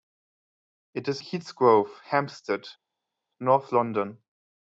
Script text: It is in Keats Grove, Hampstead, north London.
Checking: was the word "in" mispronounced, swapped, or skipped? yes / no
yes